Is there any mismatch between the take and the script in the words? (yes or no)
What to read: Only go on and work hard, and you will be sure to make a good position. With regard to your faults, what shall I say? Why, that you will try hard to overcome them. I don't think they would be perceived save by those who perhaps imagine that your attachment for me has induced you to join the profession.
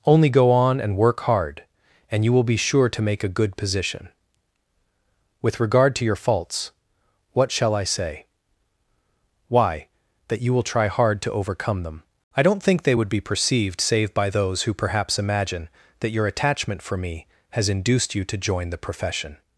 no